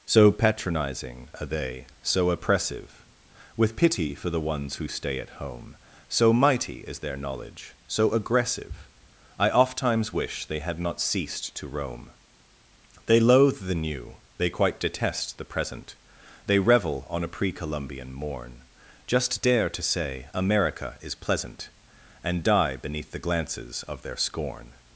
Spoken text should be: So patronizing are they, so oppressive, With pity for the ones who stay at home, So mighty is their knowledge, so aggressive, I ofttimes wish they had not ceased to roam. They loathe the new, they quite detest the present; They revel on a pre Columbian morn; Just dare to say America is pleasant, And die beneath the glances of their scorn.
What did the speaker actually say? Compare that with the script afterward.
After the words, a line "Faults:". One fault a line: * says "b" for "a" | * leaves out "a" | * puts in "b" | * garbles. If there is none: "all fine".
So patronizing are they, so oppressive, With pity for the ones who stay at home, So mighty is their knowledge, so aggressive, I ofttimes wish they had not ceased to roam. They loathe the new, they quite detest the present; They revel on a pre Columbian morn; Just dare to say America is pleasant, And die beneath the glances of their scorn.
Faults:
all fine